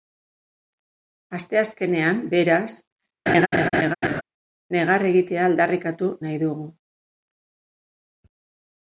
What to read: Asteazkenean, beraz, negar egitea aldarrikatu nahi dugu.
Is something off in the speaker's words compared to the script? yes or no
no